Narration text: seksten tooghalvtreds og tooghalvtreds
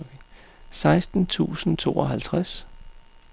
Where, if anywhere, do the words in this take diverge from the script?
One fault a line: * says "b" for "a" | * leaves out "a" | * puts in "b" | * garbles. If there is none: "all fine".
* says "tusind" for "tooghalvtreds"